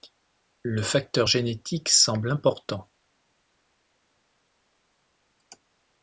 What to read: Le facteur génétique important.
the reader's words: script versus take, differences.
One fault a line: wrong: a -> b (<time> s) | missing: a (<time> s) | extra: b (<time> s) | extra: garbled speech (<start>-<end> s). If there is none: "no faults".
extra: semble (1.9 s)